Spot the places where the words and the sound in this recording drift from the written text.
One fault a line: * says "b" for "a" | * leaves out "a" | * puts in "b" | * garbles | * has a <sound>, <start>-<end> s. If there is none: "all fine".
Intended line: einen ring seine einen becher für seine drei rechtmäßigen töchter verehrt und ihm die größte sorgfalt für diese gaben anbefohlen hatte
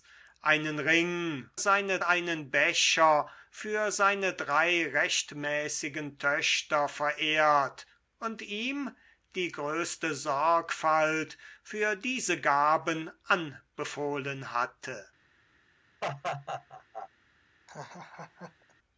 * has a laugh, 16.0-17.1 s
* has a laugh, 17.7-18.7 s